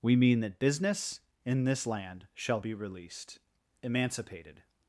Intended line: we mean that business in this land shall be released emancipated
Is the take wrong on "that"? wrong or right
right